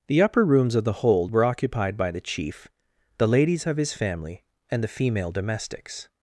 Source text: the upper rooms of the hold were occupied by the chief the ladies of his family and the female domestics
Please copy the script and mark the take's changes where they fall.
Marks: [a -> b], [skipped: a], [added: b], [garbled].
the upper rooms of the hold were occupied by the chief the ladies of his family and the female domestics